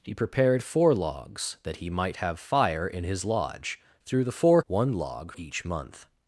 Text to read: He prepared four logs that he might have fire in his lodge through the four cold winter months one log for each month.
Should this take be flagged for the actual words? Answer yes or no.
yes